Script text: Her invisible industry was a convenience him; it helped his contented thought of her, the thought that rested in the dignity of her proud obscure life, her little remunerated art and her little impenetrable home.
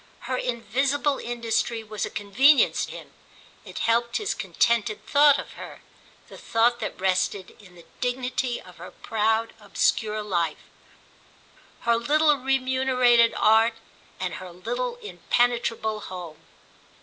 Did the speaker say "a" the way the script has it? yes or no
yes